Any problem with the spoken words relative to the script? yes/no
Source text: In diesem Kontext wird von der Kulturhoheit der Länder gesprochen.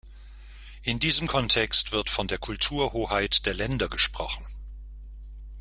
no